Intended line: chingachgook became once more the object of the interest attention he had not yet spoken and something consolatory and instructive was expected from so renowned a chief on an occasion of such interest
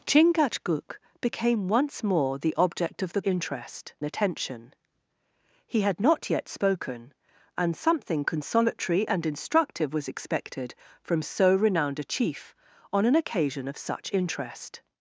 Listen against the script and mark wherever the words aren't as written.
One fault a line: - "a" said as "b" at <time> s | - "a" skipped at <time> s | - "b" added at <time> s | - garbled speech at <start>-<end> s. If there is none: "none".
none